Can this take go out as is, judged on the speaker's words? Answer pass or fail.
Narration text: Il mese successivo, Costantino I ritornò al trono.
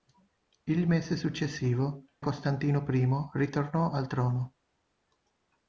pass